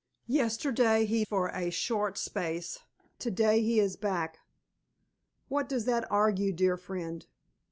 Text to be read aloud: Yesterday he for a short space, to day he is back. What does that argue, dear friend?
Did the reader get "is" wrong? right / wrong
right